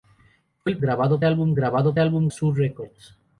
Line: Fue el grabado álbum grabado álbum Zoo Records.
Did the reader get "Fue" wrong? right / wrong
right